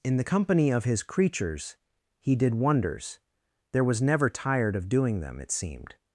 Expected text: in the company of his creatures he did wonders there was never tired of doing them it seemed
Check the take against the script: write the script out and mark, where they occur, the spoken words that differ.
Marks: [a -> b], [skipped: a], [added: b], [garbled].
in the company of his creatures he did wonders there was never tired of doing them it seemed